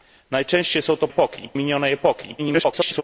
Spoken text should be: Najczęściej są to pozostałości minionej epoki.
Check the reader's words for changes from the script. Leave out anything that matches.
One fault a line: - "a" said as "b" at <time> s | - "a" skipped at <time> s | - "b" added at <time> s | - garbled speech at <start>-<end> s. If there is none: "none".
- "pozostałości" said as "epoki" at 1.1 s
- garbled speech at 2.4-3.0 s